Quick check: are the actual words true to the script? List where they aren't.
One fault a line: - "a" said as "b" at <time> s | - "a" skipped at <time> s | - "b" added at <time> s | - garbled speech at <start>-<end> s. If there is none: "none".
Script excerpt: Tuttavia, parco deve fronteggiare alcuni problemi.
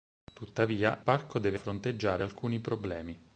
none